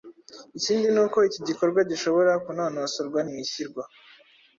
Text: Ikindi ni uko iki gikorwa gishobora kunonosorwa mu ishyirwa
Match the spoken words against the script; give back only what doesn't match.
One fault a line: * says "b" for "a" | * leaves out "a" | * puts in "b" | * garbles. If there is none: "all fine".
all fine